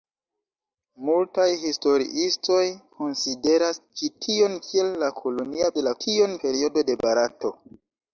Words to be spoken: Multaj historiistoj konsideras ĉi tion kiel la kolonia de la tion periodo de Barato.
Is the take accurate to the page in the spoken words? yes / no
yes